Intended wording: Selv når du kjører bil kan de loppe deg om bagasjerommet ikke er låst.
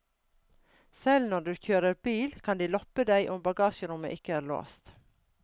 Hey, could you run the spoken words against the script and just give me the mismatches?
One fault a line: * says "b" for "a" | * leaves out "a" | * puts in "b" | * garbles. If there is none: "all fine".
all fine